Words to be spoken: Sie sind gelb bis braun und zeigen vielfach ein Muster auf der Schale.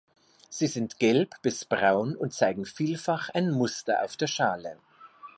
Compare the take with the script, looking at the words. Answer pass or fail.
pass